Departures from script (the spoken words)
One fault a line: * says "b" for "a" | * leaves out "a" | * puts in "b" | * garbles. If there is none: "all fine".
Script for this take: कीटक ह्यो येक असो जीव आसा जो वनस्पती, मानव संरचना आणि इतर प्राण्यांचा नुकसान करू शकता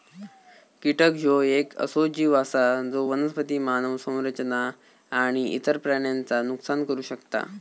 all fine